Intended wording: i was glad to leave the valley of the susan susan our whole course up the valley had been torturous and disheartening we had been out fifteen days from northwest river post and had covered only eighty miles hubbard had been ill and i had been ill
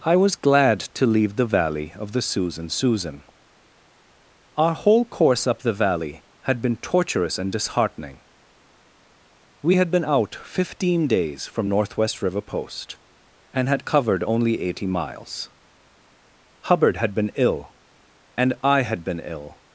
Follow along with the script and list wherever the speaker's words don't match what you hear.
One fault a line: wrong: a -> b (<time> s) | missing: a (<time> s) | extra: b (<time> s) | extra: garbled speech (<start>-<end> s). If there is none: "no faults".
no faults